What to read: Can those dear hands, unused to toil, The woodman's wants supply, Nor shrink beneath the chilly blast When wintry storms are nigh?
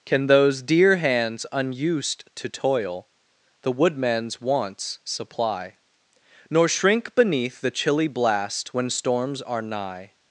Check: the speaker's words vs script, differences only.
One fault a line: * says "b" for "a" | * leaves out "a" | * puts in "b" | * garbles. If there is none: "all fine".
* leaves out "wintry"